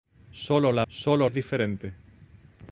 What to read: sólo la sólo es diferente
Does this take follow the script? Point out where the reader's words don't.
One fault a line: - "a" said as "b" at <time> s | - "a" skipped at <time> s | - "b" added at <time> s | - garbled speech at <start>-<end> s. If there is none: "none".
none